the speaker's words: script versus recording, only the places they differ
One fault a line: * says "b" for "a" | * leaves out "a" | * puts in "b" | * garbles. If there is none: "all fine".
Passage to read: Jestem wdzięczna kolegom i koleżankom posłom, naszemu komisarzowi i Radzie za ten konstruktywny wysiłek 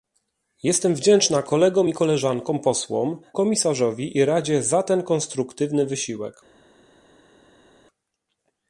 * leaves out "naszemu"